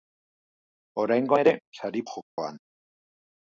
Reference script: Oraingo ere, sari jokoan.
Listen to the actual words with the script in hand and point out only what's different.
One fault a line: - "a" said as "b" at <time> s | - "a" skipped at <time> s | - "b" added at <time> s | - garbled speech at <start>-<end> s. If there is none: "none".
none